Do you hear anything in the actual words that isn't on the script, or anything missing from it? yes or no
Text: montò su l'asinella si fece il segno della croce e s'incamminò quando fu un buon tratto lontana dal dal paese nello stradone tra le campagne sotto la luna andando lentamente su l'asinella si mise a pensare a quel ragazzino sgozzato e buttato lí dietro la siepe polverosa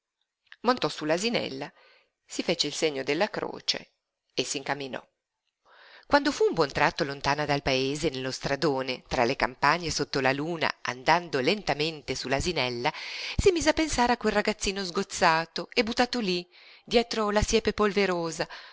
yes